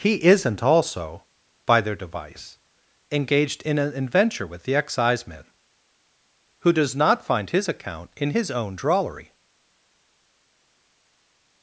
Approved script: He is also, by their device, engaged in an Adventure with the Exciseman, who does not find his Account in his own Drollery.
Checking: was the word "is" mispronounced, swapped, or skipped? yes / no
yes